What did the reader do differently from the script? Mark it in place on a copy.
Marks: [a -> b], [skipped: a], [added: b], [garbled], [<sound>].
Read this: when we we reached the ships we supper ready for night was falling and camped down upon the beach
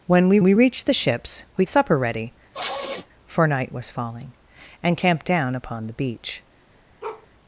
when we we reached the ships we supper ready [sniff] for night was falling and camped down upon the beach [bark]